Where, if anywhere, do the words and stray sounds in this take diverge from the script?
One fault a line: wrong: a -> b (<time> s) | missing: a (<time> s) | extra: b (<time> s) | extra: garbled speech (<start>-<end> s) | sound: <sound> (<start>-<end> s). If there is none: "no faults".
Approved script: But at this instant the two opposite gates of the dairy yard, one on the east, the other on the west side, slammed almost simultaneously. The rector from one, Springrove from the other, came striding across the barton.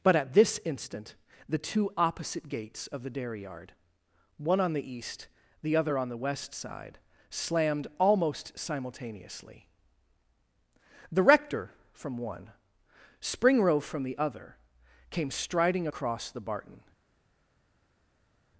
no faults